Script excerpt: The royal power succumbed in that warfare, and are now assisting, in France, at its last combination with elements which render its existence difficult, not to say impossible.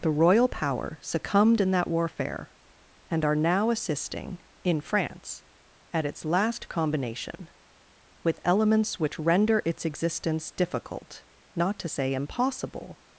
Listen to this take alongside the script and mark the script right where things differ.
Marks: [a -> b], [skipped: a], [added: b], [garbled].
The royal power succumbed in that warfare, and are now assisting, in France, at its last combination with elements which render its existence difficult, not to say impossible.